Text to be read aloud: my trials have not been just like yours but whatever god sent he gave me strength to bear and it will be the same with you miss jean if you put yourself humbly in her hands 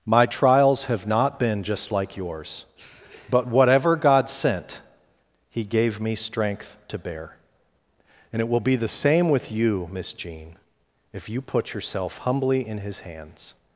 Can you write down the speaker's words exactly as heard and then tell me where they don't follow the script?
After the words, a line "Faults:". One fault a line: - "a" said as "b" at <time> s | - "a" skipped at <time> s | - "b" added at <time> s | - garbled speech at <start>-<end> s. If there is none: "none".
my trials have not been just like yours but whatever god sent he gave me strength to bear and it will be the same with you miss jean if you put yourself humbly in his hands
Faults:
- "her" said as "his" at 12.8 s